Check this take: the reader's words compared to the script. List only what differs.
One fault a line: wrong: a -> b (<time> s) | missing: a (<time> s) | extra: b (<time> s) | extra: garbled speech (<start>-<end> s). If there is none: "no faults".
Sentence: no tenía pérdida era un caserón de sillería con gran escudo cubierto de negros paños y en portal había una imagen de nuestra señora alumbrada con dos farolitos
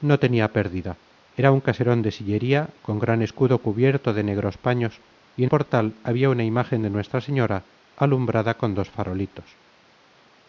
no faults